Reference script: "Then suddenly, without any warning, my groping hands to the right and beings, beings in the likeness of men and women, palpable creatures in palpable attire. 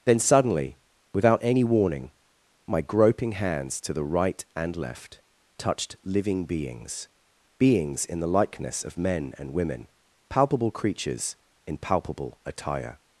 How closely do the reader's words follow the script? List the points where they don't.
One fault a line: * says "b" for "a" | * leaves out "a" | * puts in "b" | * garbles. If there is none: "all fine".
* puts in "left touched living"